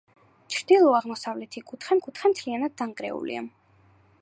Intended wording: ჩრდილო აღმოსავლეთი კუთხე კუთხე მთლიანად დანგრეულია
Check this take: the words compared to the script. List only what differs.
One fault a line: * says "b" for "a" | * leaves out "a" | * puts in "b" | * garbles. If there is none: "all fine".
all fine